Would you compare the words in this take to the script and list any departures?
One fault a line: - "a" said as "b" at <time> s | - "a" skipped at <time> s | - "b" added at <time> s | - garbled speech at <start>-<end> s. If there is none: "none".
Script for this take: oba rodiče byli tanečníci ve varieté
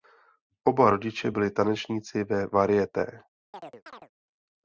none